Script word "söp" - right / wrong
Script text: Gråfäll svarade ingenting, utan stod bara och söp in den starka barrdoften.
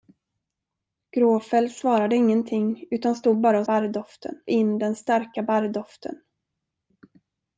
wrong